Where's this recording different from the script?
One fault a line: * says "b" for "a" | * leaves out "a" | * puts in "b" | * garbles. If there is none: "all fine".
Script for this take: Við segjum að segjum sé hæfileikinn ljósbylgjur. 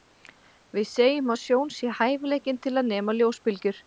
* says "sjón" for "segjum"
* puts in "til að nema"